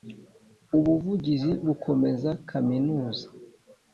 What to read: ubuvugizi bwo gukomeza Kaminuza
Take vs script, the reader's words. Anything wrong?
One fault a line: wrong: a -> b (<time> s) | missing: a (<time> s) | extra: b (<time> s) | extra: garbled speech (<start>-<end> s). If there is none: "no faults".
missing: bwo (1.5 s)